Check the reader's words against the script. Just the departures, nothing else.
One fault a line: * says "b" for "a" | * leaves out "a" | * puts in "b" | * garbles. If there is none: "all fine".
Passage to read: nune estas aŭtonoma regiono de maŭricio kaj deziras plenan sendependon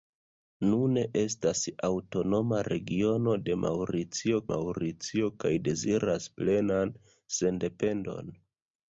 * puts in "maŭricio"